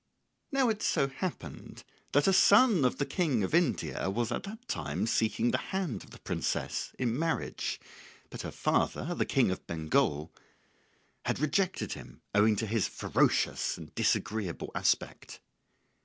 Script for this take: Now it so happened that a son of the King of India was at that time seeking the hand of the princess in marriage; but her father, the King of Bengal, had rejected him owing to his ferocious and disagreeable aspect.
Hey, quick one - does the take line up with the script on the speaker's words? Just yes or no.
yes